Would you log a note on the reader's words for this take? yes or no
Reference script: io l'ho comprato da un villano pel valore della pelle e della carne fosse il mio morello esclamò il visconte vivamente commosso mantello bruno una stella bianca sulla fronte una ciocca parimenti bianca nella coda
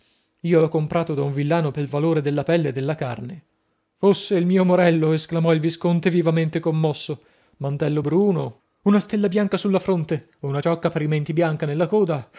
no